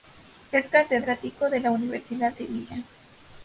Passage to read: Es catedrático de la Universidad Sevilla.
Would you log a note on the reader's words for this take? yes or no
no